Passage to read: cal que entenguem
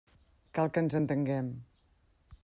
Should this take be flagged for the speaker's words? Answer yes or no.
yes